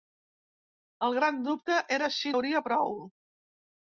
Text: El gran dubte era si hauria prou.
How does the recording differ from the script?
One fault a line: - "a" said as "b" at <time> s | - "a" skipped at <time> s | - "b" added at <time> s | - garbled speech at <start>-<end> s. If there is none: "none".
none